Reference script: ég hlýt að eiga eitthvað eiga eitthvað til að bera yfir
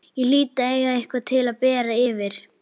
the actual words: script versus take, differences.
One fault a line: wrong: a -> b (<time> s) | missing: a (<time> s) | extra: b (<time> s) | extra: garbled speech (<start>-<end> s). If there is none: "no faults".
missing: eiga eitthvað (1.3 s)